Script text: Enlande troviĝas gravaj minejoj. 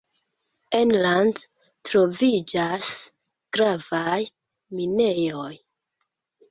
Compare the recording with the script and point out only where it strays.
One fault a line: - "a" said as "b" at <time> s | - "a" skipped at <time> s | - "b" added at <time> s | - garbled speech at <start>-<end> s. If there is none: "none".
none